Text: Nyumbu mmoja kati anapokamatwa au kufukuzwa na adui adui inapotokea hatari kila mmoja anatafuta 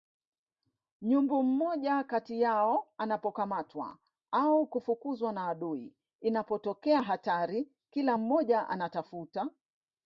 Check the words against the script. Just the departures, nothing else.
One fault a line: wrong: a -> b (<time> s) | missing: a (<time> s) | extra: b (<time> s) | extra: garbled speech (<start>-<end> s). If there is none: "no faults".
extra: yao (2.4 s)
missing: adui (6.0 s)